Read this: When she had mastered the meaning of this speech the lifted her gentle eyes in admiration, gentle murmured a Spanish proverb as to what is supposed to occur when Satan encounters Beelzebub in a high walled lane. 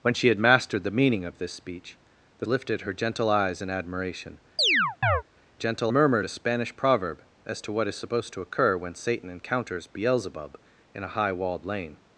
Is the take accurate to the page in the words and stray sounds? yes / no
no